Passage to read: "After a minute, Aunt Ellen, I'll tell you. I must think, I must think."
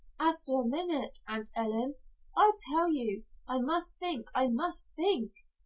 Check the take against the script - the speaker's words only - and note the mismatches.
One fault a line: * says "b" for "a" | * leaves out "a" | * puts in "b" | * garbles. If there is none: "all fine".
all fine